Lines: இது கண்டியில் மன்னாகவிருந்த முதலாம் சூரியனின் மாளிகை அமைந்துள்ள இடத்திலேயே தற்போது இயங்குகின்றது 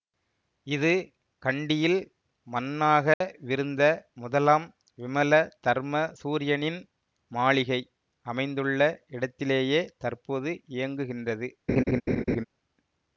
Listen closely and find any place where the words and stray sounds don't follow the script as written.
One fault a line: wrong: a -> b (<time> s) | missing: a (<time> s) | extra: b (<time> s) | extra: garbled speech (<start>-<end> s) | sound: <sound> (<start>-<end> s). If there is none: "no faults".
sound: dropout (3.1-3.2 s)
extra: விமல தர்ம (5.0 s)
sound: laugh (11.7-12.4 s)